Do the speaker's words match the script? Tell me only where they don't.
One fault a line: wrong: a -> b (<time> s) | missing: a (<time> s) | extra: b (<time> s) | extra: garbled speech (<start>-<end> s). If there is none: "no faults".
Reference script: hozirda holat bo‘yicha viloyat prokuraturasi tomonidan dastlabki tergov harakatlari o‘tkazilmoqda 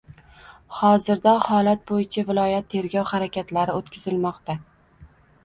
missing: prokuraturasi tomonidan dastlabki (2.7 s)